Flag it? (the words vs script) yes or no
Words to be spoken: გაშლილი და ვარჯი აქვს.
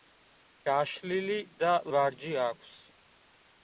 no